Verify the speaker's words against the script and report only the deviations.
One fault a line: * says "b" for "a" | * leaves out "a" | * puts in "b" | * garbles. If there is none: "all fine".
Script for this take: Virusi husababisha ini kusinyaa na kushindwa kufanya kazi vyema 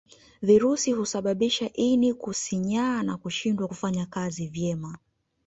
all fine